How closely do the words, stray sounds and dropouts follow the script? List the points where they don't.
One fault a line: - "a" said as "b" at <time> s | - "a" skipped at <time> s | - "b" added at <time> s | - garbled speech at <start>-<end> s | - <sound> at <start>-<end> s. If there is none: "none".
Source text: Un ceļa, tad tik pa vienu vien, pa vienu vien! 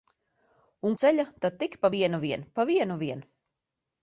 none